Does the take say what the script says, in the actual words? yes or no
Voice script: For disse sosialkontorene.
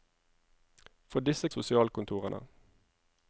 yes